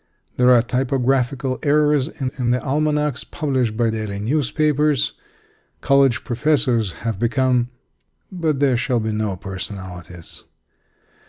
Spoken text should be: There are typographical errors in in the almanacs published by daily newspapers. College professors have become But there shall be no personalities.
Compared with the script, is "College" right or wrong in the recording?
right